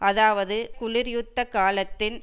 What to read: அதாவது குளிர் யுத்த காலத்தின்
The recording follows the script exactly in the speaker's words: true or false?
true